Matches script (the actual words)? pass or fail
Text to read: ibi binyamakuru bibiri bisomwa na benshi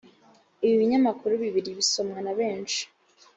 pass